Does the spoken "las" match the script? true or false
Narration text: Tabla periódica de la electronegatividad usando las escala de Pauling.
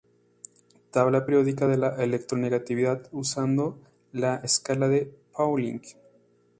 false